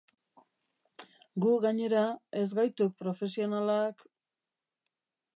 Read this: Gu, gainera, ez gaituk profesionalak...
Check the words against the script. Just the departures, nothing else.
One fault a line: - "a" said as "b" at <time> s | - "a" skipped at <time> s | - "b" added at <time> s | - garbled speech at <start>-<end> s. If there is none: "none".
none